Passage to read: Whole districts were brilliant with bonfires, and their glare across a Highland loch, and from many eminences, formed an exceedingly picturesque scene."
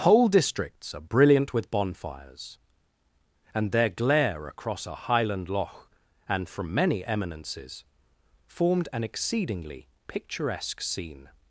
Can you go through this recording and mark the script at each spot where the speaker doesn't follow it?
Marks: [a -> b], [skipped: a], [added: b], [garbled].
Whole districts [were -> are] brilliant with bonfires, and their glare across a Highland loch, and from many eminences, formed an exceedingly picturesque scene."